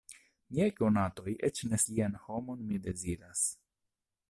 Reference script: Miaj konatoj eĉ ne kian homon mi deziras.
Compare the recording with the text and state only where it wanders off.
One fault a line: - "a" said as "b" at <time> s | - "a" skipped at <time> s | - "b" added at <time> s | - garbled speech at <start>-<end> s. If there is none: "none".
none